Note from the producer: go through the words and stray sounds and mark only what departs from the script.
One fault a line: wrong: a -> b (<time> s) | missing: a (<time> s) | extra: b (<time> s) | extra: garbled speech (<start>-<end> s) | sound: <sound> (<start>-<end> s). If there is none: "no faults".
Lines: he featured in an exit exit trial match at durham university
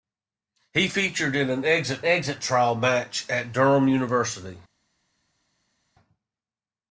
no faults